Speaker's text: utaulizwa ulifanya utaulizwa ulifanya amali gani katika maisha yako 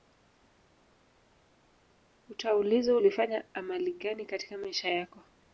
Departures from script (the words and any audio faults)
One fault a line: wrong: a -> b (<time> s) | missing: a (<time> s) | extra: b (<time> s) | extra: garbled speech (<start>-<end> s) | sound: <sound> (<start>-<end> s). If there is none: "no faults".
missing: utaulizwa ulifanya (3.5 s)